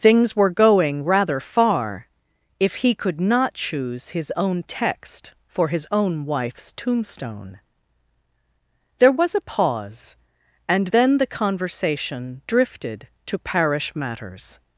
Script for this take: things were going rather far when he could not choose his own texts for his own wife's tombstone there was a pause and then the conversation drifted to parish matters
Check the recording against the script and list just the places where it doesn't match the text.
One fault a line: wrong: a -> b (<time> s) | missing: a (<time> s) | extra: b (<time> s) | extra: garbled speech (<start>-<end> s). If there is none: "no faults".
wrong: when -> if (2.6 s)
wrong: texts -> text (4.6 s)